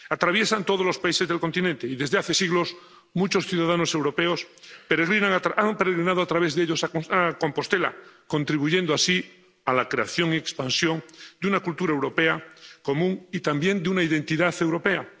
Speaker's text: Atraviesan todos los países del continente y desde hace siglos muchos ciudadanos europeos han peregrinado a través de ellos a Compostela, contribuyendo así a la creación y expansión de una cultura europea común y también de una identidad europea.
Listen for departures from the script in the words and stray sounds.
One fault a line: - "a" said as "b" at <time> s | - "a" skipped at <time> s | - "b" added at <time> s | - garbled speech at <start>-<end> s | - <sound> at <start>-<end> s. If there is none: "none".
none